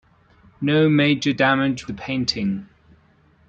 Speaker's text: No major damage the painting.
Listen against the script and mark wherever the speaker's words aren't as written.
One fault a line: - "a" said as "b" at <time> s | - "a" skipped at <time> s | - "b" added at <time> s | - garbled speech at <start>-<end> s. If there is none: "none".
none